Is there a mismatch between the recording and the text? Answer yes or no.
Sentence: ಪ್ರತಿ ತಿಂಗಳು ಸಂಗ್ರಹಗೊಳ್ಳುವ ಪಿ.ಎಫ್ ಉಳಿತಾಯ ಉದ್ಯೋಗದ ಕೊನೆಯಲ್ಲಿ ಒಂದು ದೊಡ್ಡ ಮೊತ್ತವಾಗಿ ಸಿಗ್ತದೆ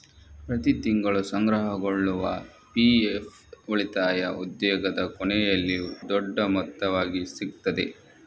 yes